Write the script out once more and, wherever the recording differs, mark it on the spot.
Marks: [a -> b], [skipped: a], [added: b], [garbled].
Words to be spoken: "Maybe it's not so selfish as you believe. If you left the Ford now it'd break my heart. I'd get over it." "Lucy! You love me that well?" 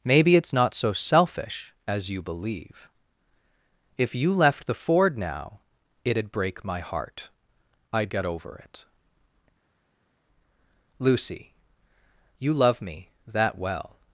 "Maybe it's not so selfish as you believe. If you left the Ford now it'd break my heart. I'd get over it." "Lucy! You love me that well?"